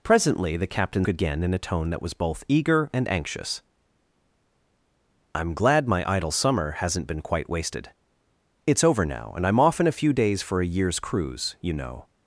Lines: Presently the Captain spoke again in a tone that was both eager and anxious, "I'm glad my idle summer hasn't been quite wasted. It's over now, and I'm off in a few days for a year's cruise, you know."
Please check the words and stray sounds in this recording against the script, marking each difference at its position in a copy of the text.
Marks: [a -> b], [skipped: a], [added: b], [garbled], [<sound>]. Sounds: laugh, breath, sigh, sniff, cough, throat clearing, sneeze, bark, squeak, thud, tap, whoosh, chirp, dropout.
Presently the Captain [skipped: spoke] again in a tone that was both eager and anxious, "I'm glad my idle summer hasn't been quite wasted. It's over now, and I'm off in a few days for a year's cruise, you know."